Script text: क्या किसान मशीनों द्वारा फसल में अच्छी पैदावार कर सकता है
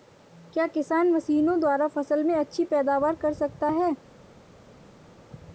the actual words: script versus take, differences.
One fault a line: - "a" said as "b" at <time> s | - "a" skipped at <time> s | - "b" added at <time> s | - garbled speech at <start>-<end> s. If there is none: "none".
none